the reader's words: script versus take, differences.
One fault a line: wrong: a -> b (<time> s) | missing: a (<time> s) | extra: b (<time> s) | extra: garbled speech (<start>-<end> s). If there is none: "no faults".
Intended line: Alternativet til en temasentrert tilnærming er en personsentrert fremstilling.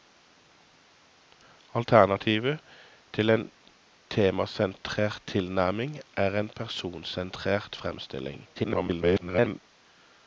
extra: garbled speech (8.5-9.6 s)